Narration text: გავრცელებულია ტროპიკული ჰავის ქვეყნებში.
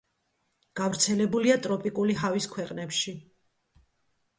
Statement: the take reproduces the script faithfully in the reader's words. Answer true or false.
true